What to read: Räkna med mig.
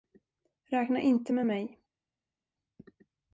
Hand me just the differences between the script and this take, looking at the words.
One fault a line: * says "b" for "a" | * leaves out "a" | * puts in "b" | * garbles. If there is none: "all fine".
* puts in "inte"